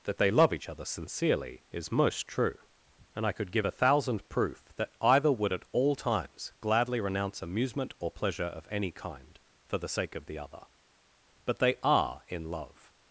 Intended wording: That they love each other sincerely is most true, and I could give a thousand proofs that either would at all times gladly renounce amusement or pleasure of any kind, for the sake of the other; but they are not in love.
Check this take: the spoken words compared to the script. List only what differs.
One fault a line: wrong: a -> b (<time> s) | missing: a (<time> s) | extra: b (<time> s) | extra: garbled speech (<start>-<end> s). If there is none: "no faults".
wrong: proofs -> proof (4.3 s)
missing: not (12.2 s)